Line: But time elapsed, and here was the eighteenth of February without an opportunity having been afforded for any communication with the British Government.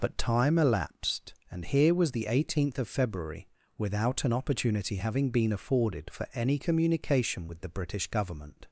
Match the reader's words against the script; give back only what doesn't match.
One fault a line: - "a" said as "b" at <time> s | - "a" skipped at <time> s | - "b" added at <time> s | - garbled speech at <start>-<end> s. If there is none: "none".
none